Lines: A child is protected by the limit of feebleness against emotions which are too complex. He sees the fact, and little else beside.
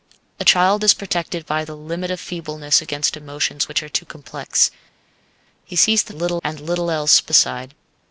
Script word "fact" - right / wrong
wrong